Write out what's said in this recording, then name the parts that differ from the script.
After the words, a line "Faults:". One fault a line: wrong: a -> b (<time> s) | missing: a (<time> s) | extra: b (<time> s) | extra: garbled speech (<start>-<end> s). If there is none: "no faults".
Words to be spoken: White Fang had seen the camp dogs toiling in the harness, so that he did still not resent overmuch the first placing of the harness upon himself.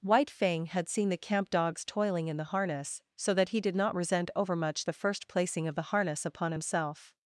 White Fang had seen the camp dogs toiling in the harness, so that he did not resent overmuch the first placing of the harness upon himself.
Faults:
missing: still (3.8 s)